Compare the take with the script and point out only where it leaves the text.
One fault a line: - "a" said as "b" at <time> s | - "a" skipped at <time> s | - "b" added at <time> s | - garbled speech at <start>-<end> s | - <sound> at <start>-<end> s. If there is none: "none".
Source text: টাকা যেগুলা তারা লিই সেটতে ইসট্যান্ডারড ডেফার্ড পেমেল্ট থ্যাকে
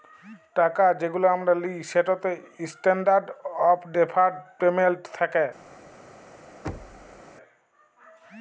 - "তারা" said as "আমরা" at 1.3 s
- "অফ" added at 3.7 s
- thud at 6.6-7.2 s